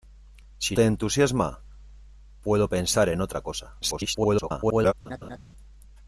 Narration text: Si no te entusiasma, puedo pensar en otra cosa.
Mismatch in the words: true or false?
true